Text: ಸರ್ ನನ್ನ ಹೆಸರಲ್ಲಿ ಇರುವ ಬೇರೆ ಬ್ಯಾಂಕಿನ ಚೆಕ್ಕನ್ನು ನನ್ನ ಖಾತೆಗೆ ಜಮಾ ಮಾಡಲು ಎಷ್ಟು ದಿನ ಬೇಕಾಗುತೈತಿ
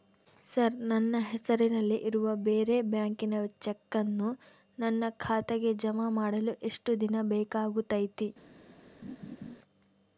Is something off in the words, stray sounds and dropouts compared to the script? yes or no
yes